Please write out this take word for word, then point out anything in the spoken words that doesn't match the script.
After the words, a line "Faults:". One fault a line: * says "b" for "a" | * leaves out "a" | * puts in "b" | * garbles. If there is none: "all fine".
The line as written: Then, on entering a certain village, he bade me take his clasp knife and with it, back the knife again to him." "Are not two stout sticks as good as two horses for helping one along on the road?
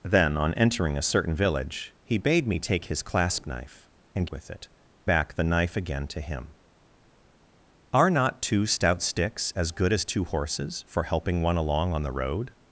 Then, on entering a certain village, he bade me take his clasp knife and with it, back the knife again to him." "Are not two stout sticks as good as two horses for helping one along on the road?
Faults:
all fine